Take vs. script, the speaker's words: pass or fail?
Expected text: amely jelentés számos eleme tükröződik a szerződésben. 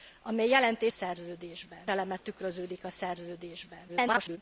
fail